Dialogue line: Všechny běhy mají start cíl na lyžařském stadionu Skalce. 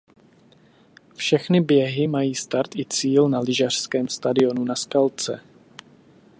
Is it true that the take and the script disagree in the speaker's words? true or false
true